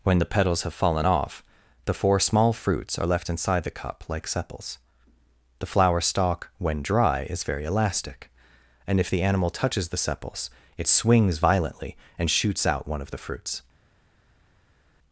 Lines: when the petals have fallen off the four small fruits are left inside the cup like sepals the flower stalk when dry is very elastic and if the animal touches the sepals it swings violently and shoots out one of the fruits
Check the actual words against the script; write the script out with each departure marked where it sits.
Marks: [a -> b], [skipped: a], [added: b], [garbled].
when the petals have fallen off the four small fruits are left inside the cup like sepals the flower stalk when dry is very elastic and if the animal touches the sepals it swings violently and shoots out one of the fruits